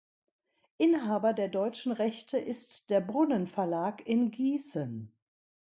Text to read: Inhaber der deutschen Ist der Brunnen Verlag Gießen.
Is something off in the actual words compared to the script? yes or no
yes